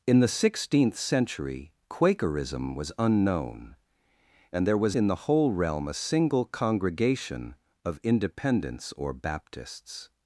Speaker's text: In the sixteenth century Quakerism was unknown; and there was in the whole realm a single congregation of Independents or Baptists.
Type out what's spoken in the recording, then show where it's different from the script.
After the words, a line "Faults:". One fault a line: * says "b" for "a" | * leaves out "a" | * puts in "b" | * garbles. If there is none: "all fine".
In the sixteenth century Quakerism was unknown; and there was in the whole realm a single congregation of Independents or Baptists.
Faults:
all fine